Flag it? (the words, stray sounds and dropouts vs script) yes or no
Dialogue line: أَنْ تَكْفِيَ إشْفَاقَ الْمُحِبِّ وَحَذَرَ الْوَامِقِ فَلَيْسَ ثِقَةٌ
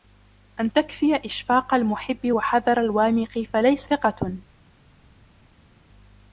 no